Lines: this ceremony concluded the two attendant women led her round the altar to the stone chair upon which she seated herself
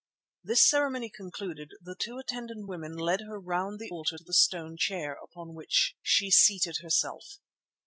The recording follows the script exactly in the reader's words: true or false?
true